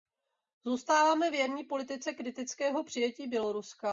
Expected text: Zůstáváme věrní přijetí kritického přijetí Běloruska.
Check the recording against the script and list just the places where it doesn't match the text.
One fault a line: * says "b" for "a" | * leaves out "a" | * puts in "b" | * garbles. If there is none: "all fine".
* says "politice" for "přijetí"